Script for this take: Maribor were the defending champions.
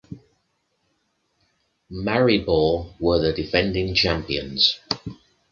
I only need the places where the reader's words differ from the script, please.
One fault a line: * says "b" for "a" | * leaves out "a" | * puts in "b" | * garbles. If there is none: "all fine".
all fine